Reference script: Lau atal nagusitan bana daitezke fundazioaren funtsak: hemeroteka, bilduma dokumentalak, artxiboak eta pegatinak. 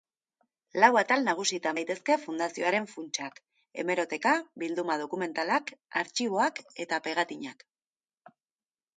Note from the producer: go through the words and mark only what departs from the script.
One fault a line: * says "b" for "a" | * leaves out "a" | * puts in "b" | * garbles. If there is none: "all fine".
* leaves out "bana"